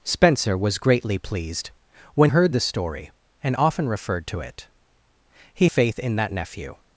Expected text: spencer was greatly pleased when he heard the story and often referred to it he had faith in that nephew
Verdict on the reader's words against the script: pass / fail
fail